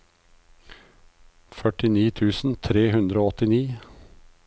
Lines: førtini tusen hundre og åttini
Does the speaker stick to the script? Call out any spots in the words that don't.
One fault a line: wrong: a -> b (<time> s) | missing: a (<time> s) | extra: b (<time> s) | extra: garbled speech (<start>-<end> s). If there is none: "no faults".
extra: tre (2.7 s)